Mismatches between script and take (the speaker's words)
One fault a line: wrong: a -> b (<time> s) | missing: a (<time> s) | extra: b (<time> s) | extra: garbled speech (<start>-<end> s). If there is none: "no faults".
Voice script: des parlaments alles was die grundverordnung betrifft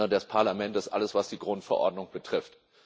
no faults